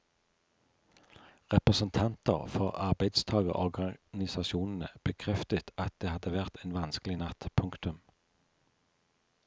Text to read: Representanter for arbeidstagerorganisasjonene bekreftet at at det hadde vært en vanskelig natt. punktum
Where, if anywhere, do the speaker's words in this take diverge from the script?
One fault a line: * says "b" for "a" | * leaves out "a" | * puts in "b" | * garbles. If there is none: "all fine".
* leaves out "at"